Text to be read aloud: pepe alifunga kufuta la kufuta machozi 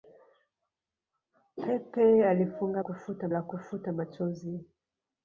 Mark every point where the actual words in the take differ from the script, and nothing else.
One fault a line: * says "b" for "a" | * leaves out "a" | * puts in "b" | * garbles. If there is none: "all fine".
all fine